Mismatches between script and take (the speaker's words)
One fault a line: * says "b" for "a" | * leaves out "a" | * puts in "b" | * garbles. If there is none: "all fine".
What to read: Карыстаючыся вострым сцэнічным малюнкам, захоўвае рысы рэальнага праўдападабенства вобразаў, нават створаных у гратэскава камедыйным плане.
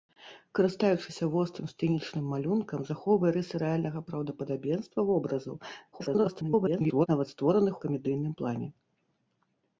* garbles
* leaves out "у гратэскава"